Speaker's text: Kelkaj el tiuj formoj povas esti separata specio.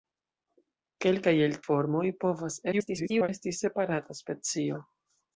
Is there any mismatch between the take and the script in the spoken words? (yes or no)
yes